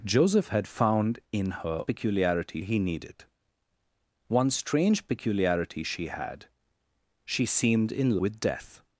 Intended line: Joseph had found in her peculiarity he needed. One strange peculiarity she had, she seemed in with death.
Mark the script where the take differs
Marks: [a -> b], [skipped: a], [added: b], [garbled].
Joseph had found in her peculiarity he needed. One strange peculiarity she had, she seemed in with death.